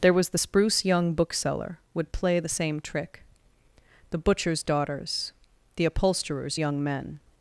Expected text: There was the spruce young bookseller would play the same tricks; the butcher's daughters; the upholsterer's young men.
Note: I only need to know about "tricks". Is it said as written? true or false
false